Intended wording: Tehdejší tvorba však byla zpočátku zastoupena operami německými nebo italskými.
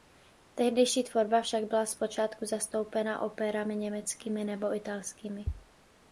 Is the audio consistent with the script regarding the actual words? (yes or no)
yes